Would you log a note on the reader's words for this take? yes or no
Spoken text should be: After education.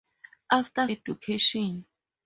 no